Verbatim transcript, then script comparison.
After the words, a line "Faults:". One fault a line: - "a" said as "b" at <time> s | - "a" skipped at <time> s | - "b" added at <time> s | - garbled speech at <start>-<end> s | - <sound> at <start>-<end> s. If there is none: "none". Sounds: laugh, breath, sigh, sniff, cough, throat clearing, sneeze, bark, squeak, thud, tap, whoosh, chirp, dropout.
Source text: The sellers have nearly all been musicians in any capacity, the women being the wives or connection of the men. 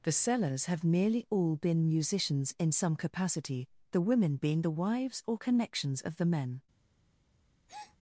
The sellers have nearly all been musicians in some capacity, the women being the wives or connections of the men.
Faults:
- "any" said as "some" at 2.7 s
- "connection" said as "connections" at 5.4 s
- breath at 7.7-8.0 s